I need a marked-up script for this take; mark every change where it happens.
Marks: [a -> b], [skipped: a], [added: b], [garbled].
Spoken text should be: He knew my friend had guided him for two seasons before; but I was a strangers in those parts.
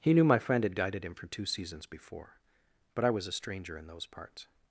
He knew my friend had guided him for two seasons before; but I was a [strangers -> stranger] in those parts.